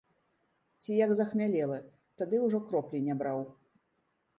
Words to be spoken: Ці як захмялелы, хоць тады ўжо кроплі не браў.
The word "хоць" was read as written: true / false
false